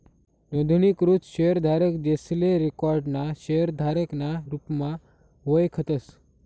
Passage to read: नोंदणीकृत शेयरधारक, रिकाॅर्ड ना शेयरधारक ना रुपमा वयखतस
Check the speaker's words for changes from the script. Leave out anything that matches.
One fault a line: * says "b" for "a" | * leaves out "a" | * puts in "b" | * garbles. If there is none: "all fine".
* puts in "जेसले"